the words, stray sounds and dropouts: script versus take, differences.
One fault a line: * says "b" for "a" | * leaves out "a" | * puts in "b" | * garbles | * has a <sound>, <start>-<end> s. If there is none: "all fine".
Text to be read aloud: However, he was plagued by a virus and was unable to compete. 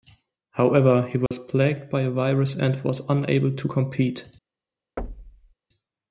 * has a dropout, 1.3-1.3 s
* has a thud, 5.0-5.5 s